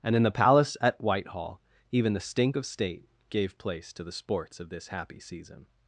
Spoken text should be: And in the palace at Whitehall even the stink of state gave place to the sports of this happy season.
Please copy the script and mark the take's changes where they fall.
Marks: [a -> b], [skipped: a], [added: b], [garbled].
And in the palace at Whitehall even the stink of state gave place to the sports of this happy season.